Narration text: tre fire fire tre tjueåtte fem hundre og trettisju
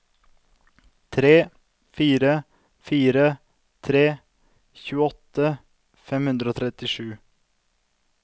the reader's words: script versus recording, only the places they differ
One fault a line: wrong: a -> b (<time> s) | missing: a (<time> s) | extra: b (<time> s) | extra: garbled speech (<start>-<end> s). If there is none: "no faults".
no faults